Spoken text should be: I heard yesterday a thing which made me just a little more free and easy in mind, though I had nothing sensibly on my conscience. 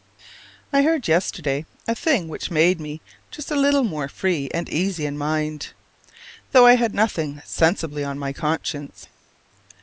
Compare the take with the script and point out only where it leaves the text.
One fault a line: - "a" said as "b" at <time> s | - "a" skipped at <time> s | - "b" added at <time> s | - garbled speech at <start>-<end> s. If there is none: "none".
none